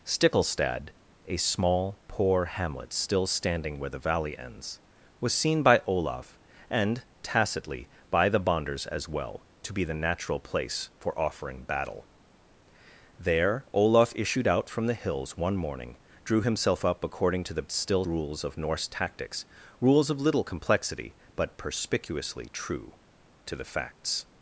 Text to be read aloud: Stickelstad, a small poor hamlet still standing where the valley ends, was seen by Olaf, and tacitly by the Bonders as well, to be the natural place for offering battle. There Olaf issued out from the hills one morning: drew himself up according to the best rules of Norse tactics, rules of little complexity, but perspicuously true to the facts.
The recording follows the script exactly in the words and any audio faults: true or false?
false